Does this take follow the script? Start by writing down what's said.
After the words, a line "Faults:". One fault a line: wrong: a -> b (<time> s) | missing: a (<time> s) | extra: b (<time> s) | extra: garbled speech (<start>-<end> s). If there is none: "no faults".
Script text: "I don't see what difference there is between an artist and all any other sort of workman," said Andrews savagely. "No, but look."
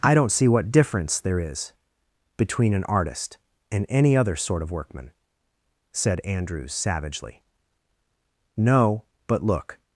"I don't see what difference there is between an artist and any other sort of workman," said Andrews savagely. "No, but look."
Faults:
missing: all (3.9 s)